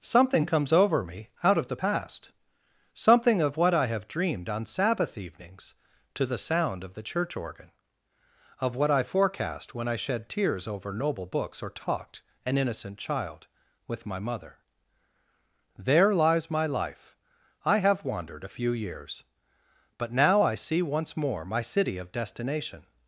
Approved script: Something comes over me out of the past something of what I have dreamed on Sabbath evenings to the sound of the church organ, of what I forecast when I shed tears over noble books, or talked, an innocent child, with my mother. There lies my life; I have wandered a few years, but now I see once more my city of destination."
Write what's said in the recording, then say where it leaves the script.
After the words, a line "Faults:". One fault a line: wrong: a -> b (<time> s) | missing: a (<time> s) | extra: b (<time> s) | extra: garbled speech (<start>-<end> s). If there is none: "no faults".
Something comes over me out of the past something of what I have dreamed on Sabbath evenings to the sound of the church organ, of what I forecast when I shed tears over noble books, or talked, an innocent child, with my mother. There lies my life; I have wandered a few years, but now I see once more my city of destination."
Faults:
no faults